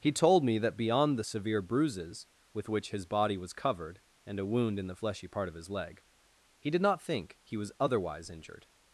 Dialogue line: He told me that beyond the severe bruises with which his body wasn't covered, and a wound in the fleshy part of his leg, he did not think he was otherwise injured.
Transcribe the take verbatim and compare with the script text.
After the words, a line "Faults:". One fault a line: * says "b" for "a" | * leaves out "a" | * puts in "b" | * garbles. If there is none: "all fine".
He told me that beyond the severe bruises with which his body was covered, and a wound in the fleshy part of his leg, he did not think he was otherwise injured.
Faults:
* says "was" for "wasn't"